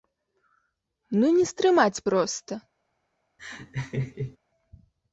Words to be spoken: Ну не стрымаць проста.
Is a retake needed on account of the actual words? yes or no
no